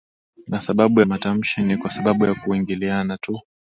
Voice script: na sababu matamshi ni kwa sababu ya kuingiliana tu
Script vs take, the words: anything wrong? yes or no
no